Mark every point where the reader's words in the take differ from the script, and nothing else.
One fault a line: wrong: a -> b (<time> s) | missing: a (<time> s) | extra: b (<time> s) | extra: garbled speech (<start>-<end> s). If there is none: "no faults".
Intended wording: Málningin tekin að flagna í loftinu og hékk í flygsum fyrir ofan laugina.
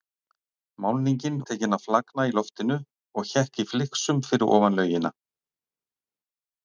no faults